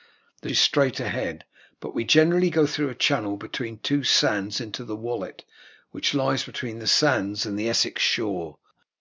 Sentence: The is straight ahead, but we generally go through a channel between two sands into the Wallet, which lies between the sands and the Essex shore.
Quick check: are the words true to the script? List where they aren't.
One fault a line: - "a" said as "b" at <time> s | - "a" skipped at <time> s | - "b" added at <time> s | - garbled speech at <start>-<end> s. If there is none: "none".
none